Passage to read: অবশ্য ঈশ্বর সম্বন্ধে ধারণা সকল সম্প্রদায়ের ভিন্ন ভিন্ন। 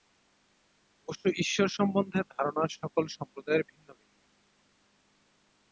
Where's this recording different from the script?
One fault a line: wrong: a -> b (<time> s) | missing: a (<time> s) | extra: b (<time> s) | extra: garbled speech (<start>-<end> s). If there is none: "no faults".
no faults